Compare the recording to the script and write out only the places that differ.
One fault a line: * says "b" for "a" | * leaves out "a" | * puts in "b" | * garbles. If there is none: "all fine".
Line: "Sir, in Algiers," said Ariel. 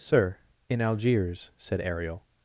all fine